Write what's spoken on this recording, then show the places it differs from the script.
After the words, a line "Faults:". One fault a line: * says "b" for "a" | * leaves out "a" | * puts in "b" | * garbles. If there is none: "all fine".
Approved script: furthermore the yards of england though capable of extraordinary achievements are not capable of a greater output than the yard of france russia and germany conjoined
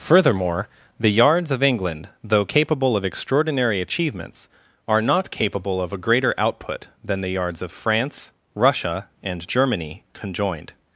furthermore the yards of england though capable of extraordinary achievements are not capable of a greater output than the yards of france russia and germany conjoined
Faults:
* says "yards" for "yard"